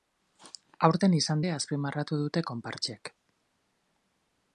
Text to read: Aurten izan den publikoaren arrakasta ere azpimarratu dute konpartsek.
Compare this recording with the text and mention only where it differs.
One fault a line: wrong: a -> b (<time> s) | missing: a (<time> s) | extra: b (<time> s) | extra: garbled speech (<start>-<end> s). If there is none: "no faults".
missing: den publikoaren arrakasta (1.4 s)